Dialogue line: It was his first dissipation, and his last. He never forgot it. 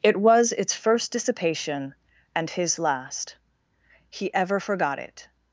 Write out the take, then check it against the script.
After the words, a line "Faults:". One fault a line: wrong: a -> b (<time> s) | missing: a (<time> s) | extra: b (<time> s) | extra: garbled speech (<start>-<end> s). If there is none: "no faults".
It was its first dissipation, and his last. He ever forgot it.
Faults:
wrong: his -> its (0.5 s)
wrong: never -> ever (4.3 s)